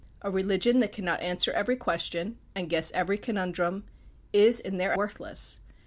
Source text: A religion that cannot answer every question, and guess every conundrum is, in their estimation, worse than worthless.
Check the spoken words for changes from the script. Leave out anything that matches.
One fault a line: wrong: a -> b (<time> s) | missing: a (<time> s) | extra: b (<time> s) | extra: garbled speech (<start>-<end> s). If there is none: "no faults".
missing: estimation worse than (4.9 s)